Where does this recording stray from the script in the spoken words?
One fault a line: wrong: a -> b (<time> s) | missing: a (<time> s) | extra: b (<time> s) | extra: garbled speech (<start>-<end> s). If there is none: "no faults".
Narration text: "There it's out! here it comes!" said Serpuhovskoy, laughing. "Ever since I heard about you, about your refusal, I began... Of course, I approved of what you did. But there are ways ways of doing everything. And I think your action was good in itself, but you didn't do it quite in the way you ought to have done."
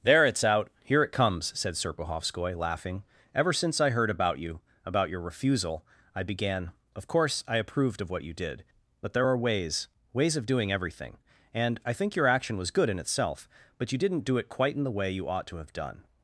no faults